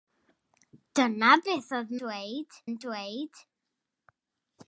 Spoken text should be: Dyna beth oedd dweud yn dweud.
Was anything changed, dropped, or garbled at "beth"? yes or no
no